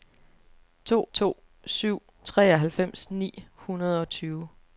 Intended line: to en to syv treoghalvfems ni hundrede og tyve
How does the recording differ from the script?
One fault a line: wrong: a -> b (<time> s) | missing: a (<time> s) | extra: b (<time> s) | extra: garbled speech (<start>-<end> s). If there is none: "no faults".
missing: en (1.1 s)